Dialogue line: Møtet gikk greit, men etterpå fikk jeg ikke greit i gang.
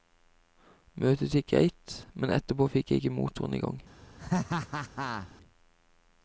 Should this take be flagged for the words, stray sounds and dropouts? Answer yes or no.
yes